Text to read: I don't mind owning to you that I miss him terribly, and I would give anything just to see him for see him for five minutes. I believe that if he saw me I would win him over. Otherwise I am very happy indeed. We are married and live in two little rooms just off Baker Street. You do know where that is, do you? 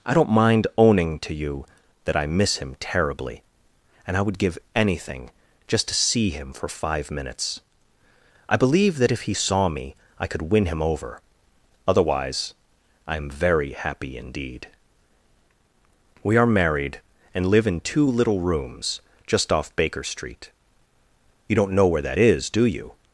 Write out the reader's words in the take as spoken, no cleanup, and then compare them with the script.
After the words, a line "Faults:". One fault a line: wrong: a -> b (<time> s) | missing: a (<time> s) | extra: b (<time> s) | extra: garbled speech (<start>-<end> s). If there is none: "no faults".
I don't mind owning to you that I miss him terribly, and I would give anything just to see him for five minutes. I believe that if he saw me I could win him over. Otherwise I am very happy indeed. We are married and live in two little rooms just off Baker Street. You don't know where that is, do you?
Faults:
missing: see him for (6.7 s)
wrong: would -> could (10.3 s)
wrong: do -> don't (21.6 s)